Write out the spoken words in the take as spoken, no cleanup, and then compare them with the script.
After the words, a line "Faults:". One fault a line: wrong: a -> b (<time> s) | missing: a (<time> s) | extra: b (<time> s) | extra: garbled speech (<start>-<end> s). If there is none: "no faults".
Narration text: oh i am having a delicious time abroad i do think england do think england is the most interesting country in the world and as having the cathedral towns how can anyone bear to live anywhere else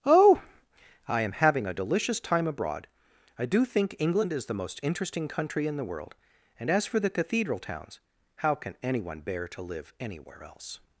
oh i am having a delicious time abroad i do think england is the most interesting country in the world and as for the cathedral towns how can anyone bear to live anywhere else
Faults:
missing: do think england (4.3 s)
wrong: having -> for (6.9 s)